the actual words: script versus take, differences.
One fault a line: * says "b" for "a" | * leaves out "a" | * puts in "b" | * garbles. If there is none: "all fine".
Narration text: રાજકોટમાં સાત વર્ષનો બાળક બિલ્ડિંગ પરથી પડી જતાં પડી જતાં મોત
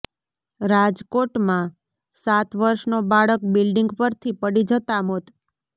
* leaves out "પડી જતાં"